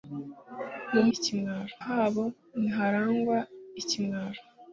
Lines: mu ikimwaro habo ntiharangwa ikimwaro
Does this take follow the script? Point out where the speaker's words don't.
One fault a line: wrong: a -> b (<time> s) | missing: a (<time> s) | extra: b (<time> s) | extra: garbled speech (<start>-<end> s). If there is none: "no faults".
no faults